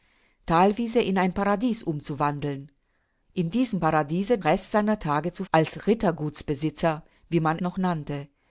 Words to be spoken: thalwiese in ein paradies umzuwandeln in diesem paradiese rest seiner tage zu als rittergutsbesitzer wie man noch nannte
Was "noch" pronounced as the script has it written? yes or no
yes